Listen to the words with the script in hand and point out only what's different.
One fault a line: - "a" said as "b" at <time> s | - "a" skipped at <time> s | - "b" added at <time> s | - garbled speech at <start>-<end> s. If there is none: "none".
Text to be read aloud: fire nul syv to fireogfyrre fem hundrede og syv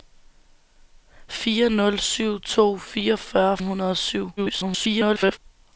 - "fem" skipped at 3.6 s
- garbled speech at 4.4-5.4 s